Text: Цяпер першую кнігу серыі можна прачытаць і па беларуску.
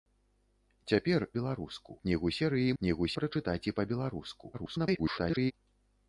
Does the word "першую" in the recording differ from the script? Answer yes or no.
yes